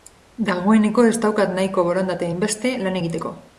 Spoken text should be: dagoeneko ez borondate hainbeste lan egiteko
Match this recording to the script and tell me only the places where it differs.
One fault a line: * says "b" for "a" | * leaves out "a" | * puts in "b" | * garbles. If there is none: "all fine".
* puts in "daukat nahiko"